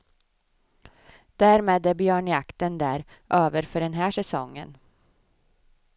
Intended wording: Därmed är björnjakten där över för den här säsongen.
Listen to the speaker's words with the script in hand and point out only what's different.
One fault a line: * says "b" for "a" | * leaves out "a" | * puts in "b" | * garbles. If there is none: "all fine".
all fine